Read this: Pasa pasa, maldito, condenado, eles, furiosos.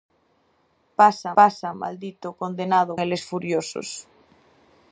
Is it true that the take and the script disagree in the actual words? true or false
false